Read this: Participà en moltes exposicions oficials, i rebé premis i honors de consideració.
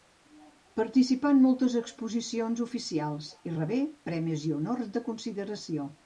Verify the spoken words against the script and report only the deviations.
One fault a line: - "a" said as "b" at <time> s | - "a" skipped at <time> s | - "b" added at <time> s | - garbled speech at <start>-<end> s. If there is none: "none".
none